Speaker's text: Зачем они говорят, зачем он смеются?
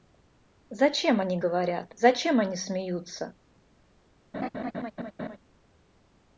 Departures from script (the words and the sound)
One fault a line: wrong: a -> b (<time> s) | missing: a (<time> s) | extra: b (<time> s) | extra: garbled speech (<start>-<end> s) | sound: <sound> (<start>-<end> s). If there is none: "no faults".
wrong: он -> они (2.4 s)
sound: laugh (4.3-5.4 s)